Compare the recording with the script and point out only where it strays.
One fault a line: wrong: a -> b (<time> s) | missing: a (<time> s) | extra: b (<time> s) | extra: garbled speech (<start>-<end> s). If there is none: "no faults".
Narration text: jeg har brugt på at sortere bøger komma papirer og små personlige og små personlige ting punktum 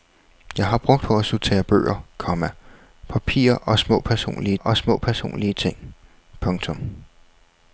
no faults